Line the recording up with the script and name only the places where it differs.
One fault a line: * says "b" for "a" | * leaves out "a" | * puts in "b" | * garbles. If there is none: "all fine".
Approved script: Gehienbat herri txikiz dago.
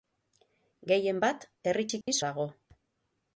all fine